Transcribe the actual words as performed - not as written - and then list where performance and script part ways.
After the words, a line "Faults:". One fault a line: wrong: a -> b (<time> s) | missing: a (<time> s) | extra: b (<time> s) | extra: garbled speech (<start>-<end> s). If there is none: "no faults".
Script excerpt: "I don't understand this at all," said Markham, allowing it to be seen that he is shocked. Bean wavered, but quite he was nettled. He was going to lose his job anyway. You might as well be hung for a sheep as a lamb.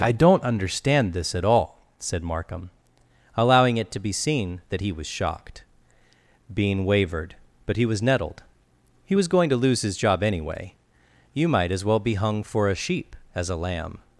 "I don't understand this at all," said Markham, allowing it to be seen that he was shocked. Bean wavered, but he was nettled. He was going to lose his job anyway. You might as well be hung for a sheep as a lamb.
Faults:
wrong: is -> was (4.9 s)
missing: quite (7.8 s)